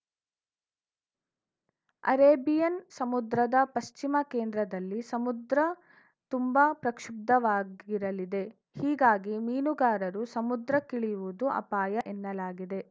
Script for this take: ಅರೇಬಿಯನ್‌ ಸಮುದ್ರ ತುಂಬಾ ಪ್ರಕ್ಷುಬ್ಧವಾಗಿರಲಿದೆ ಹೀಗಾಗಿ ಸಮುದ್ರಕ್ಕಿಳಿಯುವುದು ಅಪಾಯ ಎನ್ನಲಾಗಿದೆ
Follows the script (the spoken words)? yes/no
no